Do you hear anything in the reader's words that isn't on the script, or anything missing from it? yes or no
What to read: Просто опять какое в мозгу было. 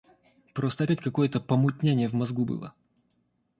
yes